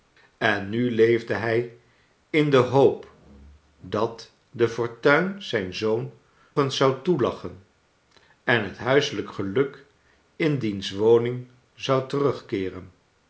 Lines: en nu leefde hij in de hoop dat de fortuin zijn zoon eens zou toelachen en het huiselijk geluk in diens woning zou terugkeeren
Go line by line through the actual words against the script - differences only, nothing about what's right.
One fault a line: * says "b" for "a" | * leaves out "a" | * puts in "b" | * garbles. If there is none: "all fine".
all fine